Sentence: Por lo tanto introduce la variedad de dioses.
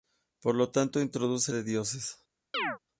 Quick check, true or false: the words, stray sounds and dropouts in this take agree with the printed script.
false